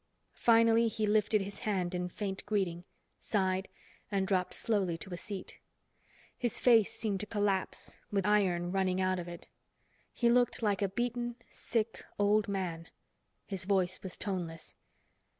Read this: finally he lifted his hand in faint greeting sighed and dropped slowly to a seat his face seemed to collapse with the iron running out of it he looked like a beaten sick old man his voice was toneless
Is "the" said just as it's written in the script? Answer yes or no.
no